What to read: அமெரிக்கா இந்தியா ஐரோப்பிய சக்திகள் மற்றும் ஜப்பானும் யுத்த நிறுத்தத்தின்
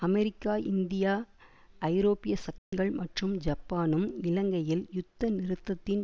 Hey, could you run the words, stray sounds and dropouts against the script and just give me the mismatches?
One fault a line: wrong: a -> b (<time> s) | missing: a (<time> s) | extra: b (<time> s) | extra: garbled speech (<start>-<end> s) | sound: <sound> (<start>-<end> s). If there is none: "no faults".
sound: dropout (2.6-2.7 s)
extra: இலங்கையில் (4.2 s)